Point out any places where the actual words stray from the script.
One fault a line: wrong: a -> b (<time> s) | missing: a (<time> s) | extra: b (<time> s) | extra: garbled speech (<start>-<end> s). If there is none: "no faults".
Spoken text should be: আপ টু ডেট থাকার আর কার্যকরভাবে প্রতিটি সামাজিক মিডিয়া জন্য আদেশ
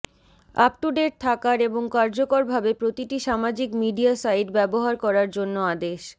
wrong: আর -> এবং (1.6 s)
extra: সাইট ব্যবহার করার (4.2 s)